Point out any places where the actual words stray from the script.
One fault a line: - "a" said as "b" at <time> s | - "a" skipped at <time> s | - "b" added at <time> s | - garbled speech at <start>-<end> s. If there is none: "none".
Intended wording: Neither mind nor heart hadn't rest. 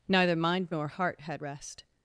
- "hadn't" said as "had" at 1.2 s